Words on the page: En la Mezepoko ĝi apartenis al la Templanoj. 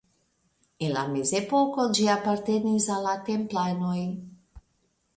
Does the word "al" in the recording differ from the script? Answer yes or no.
no